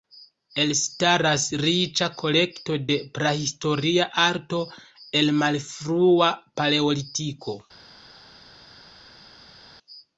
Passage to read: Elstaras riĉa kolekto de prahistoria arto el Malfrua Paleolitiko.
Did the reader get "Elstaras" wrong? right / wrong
right